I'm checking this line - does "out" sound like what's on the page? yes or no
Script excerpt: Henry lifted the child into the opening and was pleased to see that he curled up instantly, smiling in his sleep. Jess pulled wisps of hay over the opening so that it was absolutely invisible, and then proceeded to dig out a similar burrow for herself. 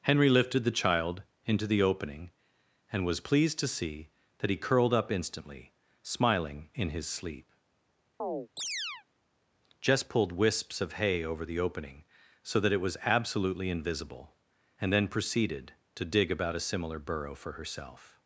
no